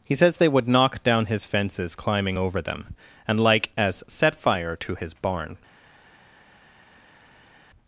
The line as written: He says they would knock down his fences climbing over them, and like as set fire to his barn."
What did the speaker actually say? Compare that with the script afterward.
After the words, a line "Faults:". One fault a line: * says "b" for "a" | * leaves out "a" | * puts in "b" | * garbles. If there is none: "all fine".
He says they would knock down his fences climbing over them, and like as set fire to his barn."
Faults:
all fine